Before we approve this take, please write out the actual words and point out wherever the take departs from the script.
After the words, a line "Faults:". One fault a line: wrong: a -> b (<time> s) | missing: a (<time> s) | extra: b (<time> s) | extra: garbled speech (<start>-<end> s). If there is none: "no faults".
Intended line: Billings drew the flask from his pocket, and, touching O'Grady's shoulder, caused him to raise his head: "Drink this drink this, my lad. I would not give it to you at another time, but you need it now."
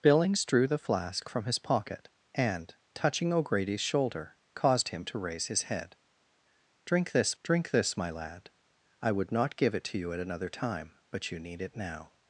Billings drew the flask from his pocket, and, touching O'Grady's shoulder, caused him to raise his head: "Drink this drink this, my lad. I would not give it to you at another time, but you need it now."
Faults:
no faults